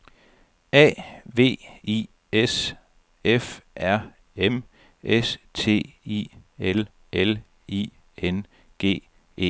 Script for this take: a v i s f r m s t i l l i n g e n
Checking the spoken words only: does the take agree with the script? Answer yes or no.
yes